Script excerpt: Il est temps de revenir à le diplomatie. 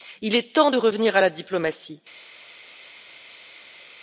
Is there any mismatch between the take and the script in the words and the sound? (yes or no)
yes